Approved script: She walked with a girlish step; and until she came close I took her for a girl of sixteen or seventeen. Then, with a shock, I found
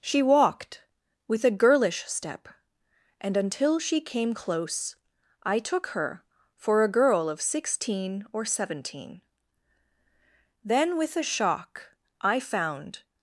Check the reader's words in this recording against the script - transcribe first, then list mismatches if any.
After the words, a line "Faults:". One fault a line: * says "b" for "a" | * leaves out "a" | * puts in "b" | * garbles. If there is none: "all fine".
She walked with a girlish step; and until she came close I took her for a girl of sixteen or seventeen. Then, with a shock, I found
Faults:
all fine